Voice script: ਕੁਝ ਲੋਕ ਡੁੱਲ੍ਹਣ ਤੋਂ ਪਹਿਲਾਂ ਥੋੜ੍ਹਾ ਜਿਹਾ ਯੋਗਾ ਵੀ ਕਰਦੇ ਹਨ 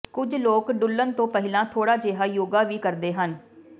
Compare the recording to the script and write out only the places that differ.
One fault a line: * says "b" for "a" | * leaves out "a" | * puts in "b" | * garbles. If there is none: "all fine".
all fine